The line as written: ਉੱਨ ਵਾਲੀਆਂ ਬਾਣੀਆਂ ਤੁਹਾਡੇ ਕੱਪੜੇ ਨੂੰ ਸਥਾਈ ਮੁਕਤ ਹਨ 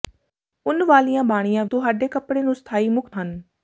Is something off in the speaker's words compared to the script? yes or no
no